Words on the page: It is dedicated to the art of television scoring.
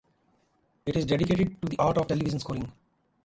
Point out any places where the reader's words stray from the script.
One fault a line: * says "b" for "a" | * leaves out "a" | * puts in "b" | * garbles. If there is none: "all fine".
all fine